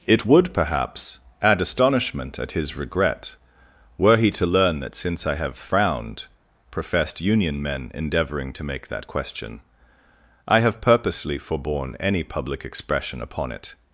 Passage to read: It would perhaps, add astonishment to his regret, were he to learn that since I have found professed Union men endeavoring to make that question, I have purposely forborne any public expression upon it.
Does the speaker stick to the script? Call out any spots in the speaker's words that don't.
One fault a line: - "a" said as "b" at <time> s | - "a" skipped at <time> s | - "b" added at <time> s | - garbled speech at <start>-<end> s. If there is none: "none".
- "to" said as "at" at 2.4 s
- "found" said as "frowned" at 5.5 s